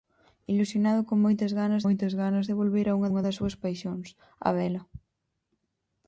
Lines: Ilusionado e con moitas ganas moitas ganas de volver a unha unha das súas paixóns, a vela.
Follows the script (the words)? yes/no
yes